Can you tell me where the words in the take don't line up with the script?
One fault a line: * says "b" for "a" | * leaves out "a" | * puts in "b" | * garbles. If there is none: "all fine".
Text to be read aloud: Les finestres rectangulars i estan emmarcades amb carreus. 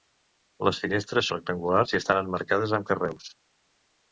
all fine